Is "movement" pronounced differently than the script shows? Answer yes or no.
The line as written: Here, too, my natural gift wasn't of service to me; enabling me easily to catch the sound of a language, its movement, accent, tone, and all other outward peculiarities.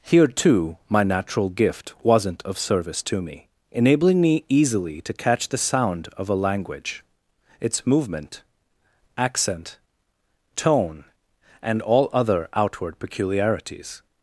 no